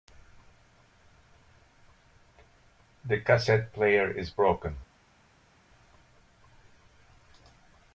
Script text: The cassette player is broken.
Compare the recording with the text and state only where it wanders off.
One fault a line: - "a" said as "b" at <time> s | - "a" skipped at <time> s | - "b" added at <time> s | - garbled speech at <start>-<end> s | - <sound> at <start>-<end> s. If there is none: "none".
none